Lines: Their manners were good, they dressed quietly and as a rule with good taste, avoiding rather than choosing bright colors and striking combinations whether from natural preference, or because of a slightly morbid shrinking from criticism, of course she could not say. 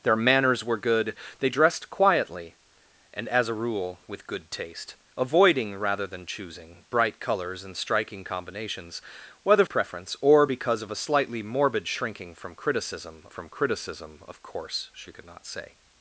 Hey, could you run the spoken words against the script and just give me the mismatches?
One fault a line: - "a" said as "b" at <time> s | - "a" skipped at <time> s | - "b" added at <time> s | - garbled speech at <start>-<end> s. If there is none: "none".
- "from natural" skipped at 9.7 s
- "from criticism" added at 13.3 s